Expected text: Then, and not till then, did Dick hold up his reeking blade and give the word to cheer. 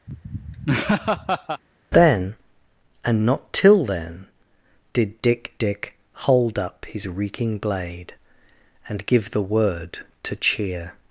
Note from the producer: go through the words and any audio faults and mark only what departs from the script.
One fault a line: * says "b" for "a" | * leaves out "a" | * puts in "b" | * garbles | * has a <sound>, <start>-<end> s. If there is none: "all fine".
* has a laugh, 0.1-1.6 s
* puts in "Dick"